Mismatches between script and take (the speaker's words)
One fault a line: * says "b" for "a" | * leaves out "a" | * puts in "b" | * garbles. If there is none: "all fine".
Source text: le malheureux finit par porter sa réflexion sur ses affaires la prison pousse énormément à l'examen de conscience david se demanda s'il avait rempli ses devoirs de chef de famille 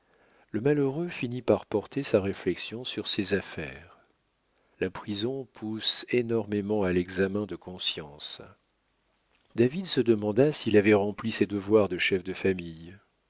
all fine